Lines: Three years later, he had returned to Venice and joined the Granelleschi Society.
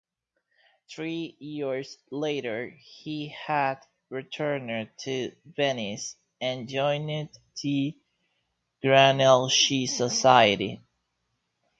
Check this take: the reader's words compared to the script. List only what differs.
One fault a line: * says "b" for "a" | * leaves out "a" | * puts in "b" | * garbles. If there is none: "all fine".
all fine